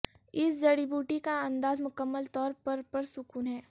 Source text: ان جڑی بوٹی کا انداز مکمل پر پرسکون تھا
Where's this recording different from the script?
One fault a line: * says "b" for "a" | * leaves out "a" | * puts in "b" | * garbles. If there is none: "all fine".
* says "اس" for "ان"
* puts in "طور"
* says "ہے" for "تھا"